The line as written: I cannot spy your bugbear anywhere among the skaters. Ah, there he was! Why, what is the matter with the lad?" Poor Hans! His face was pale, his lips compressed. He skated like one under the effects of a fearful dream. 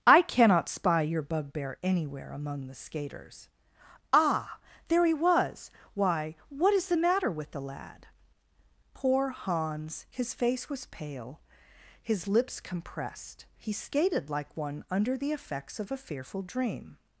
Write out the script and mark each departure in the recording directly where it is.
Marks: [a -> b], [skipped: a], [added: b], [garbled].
I cannot spy your bugbear anywhere among the skaters. Ah, there he was! Why, what is the matter with the lad?" Poor Hans! His face was pale, his lips compressed. He skated like one under the effects of a fearful dream.